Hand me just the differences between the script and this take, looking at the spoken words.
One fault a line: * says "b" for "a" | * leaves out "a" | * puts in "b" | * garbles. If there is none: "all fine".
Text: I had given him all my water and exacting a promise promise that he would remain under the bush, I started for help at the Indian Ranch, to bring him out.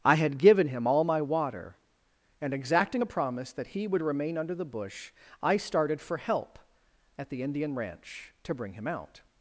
* leaves out "promise"